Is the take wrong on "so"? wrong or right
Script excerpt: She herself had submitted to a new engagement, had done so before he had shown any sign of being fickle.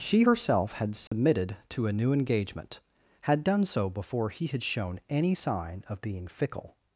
right